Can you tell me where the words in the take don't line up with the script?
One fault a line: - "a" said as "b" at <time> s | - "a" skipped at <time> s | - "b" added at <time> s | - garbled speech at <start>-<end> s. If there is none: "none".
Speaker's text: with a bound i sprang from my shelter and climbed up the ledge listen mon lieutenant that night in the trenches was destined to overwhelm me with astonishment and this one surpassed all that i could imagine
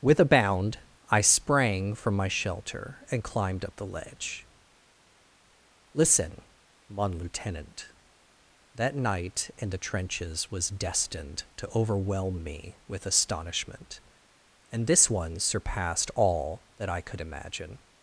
none